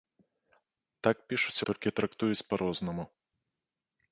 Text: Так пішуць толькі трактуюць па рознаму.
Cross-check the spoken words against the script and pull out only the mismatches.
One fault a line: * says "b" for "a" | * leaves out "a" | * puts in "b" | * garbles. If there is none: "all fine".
all fine